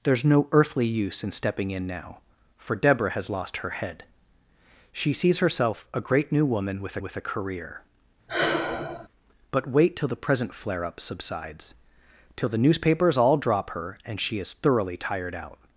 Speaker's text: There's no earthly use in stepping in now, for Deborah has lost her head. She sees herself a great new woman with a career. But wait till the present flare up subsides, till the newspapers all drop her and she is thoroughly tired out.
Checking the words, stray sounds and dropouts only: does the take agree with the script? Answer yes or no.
no